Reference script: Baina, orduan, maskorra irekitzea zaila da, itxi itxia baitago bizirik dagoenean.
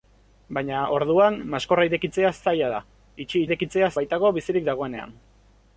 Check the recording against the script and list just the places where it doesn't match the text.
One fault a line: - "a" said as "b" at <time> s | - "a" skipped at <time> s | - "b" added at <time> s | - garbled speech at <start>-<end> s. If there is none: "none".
- "itxia" said as "irekitzea" at 3.5 s